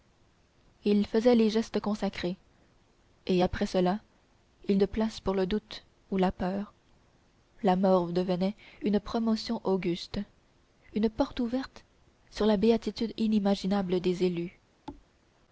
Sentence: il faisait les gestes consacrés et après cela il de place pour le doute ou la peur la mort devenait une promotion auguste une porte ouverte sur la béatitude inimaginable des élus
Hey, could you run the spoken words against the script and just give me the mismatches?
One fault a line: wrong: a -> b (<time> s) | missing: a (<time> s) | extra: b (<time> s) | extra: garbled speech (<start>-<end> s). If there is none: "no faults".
no faults